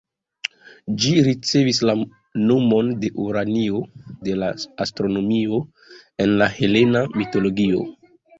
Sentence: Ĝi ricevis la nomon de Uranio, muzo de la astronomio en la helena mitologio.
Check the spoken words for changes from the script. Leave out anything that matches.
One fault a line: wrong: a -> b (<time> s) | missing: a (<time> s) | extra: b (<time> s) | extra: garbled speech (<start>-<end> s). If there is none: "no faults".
missing: muzo (3.8 s)